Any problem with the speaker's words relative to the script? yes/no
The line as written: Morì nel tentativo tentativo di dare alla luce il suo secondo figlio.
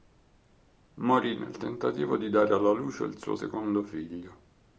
yes